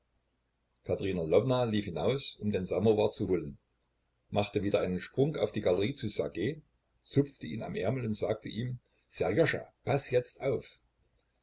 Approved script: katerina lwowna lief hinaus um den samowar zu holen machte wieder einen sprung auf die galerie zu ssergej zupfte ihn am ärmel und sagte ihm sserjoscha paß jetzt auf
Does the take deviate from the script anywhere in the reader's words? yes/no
no